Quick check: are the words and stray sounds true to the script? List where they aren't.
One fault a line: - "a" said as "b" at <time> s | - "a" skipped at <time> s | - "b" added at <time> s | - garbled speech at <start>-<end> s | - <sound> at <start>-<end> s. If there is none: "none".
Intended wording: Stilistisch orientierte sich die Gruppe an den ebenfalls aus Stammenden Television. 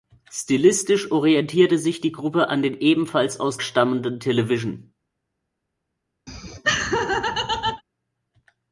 - laugh at 6.3-7.8 s